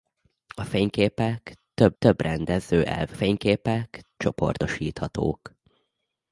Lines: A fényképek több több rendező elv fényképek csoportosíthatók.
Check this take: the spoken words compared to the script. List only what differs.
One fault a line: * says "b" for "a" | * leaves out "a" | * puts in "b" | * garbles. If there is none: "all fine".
all fine